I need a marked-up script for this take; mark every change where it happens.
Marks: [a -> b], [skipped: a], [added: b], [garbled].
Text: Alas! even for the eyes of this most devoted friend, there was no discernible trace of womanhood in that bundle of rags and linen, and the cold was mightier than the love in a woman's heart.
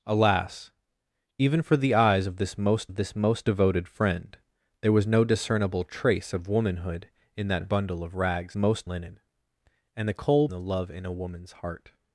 Alas! even for the eyes of this most [added: of this most] devoted friend, there was no discernible trace of womanhood in that bundle of rags [and -> most] linen, and the cold [skipped: was mightier than] the love in a woman's heart.